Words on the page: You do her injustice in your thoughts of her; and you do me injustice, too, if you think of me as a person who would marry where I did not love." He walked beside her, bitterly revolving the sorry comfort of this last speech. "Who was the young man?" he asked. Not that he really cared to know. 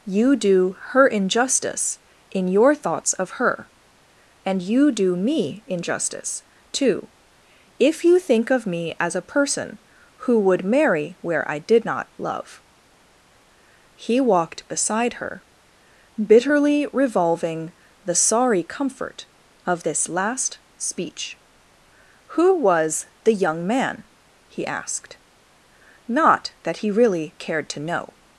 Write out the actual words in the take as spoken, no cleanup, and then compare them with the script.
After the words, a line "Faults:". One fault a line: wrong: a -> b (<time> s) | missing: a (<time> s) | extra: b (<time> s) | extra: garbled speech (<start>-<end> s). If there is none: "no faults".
You do her injustice in your thoughts of her; and you do me injustice, too, if you think of me as a person who would marry where I did not love." He walked beside her, bitterly revolving the sorry comfort of this last speech. "Who was the young man?" he asked. Not that he really cared to know.
Faults:
no faults